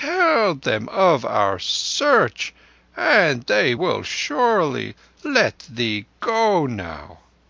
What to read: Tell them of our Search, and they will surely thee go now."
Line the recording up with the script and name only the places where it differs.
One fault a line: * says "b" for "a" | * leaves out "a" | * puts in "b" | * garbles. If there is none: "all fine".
* puts in "let"